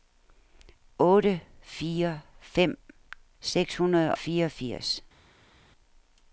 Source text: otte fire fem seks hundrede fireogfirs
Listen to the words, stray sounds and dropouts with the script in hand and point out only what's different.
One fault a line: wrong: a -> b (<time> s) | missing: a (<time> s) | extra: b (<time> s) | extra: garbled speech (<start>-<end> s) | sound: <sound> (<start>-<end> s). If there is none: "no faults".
no faults